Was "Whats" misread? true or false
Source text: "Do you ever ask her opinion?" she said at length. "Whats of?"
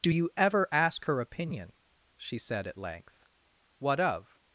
true